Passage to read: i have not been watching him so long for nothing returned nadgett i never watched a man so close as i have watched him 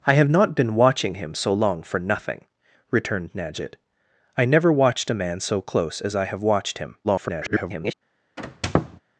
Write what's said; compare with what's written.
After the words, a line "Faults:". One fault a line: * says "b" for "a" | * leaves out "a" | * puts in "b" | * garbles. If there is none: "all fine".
i have not been watching him so long for nothing returned nadgett i never watched a man so close as i have watched him [garbled]
Faults:
* garbles